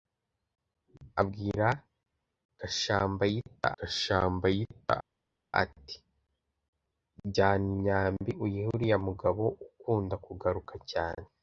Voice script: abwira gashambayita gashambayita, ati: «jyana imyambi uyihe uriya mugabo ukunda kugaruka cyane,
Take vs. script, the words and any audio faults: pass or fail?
pass